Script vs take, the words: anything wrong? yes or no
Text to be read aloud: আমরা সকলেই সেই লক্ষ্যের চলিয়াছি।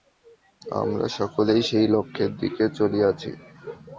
yes